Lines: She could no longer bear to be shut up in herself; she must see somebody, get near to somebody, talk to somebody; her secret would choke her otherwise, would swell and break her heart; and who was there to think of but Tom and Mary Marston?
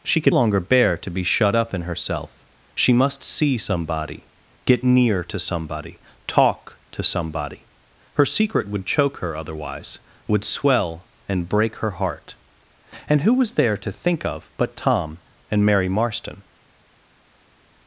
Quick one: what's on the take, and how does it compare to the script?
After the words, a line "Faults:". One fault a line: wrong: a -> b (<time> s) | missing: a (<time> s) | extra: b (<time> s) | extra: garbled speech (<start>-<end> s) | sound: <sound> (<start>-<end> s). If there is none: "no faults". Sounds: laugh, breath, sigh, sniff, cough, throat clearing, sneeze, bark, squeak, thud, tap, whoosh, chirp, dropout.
She could longer bear to be shut up in herself; she must see somebody, get near to somebody, talk to somebody; her secret would choke her otherwise, would swell and break her heart; and who was there to think of but Tom and Mary Marston?
Faults:
missing: no (0.3 s)